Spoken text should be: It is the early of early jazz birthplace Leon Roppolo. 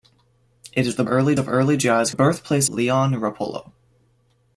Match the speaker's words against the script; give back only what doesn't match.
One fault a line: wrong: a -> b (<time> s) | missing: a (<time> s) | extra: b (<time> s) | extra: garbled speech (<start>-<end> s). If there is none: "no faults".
no faults